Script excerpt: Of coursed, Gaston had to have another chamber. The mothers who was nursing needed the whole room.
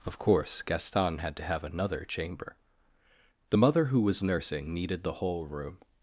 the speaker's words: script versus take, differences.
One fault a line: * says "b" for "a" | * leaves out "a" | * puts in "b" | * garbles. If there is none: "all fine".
* says "course" for "coursed"
* says "mother" for "mothers"